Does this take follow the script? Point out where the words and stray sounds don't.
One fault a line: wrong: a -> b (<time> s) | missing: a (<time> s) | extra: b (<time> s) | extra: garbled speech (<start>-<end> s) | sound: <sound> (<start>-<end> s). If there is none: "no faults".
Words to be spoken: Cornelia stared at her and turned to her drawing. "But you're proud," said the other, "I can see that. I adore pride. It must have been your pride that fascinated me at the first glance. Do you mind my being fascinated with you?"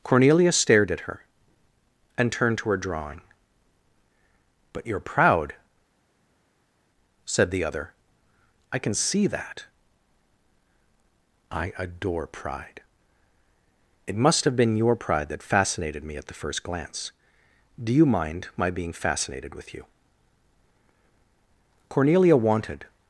extra: Cornelia wanted (21.9 s)